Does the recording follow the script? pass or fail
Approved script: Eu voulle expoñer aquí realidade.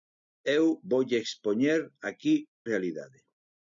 pass